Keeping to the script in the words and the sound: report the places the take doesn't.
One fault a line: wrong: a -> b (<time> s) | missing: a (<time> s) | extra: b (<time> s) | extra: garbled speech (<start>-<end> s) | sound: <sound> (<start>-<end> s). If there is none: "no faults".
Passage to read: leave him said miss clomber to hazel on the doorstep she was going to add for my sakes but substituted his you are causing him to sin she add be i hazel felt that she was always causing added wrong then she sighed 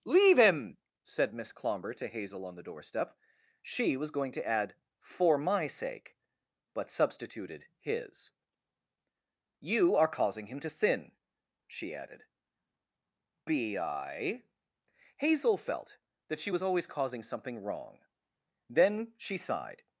wrong: sakes -> sake (5.7 s)
wrong: add -> added (11.9 s)
wrong: added -> something (17.2 s)